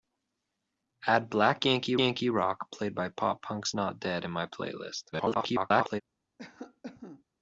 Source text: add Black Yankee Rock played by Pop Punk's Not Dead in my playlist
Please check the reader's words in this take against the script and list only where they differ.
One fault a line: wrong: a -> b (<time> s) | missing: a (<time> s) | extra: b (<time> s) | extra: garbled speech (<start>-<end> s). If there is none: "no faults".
extra: Yankee (2.0 s)
extra: garbled speech (5.1-6.0 s)